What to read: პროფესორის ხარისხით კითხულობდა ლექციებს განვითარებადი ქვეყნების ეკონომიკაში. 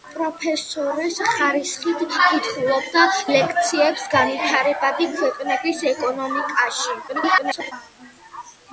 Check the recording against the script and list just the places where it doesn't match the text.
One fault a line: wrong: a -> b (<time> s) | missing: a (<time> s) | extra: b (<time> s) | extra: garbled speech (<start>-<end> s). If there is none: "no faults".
extra: garbled speech (7.1-7.7 s)